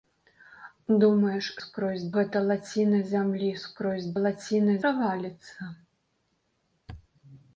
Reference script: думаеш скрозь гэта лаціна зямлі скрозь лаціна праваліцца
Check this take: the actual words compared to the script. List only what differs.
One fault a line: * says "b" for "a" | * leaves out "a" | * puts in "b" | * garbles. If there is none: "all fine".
all fine